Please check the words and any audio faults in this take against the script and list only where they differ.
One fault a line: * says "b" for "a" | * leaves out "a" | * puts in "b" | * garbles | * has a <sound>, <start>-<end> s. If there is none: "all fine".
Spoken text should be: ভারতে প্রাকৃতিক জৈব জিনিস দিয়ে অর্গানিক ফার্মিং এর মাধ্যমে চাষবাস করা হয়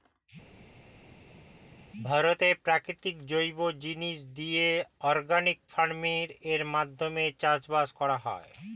all fine